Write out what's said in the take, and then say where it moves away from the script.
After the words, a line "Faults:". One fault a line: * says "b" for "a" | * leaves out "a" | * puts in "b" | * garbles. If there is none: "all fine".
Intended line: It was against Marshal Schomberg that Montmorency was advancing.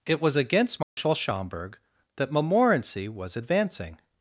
It was against Marshal Schomberg that Montmorency was advancing.
Faults:
all fine